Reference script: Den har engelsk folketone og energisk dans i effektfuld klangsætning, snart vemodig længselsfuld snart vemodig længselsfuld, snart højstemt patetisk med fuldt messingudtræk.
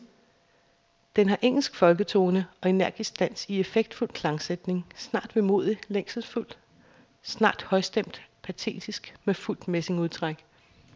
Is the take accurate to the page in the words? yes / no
no